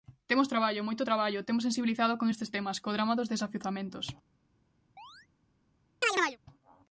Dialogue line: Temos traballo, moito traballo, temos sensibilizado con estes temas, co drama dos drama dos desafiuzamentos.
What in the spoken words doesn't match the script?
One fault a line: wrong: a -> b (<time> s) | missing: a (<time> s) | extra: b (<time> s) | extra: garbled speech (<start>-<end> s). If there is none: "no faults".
missing: drama dos (3.3 s)